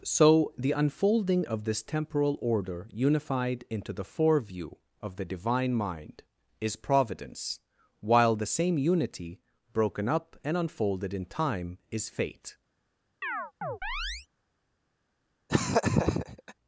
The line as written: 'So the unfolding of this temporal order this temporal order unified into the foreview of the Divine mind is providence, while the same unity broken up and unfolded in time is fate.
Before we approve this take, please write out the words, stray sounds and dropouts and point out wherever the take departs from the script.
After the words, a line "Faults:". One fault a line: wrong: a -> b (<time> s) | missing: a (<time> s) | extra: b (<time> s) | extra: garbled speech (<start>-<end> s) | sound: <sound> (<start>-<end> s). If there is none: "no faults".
'So the unfolding of this temporal order unified into the foreview of the Divine mind is providence, while the same unity broken up and unfolded in time is fate.
Faults:
missing: this temporal order (2.9 s)
sound: chirp (13.2-14.3 s)
sound: laugh (15.5-16.5 s)